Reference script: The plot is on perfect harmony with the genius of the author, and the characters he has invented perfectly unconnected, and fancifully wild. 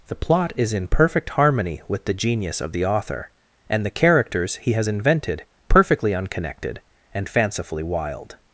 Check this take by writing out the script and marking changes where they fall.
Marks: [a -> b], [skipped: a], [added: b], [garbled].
The plot is [on -> in] perfect harmony with the genius of the author, and the characters he has invented perfectly unconnected, and fancifully wild.